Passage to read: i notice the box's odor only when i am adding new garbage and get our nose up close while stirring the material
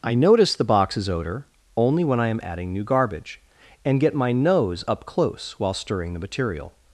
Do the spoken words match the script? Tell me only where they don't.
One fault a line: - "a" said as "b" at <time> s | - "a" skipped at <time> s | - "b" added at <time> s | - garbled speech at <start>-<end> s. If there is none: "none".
- "our" said as "my" at 4.2 s